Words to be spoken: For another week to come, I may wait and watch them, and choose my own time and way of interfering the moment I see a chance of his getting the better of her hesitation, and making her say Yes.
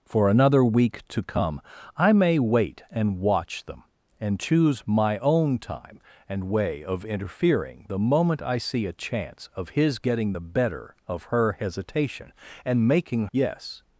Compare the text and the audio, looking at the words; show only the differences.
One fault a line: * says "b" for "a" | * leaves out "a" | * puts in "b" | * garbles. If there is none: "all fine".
* leaves out "her say"